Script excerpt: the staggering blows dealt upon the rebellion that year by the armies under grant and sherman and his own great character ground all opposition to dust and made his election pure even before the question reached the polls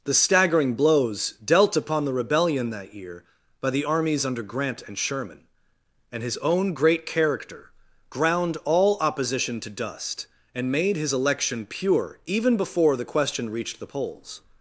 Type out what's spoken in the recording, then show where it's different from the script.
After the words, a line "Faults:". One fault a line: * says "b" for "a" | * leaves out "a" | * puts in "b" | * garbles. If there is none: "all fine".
the staggering blows dealt upon the rebellion that year by the armies under grant and sherman and his own great character ground all opposition to dust and made his election pure even before the question reached the polls
Faults:
all fine